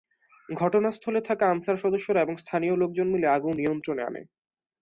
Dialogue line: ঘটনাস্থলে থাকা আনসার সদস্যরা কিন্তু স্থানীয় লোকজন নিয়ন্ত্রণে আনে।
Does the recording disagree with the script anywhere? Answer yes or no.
yes